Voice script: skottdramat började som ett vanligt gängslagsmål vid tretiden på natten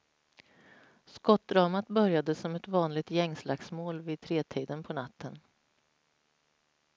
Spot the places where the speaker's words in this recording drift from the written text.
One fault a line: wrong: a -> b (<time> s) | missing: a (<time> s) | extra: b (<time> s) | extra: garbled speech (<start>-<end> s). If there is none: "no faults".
no faults